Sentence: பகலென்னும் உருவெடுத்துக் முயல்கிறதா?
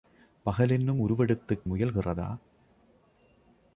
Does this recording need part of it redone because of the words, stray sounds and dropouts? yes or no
no